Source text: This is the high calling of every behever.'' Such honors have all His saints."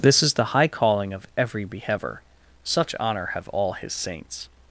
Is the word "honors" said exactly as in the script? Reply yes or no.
no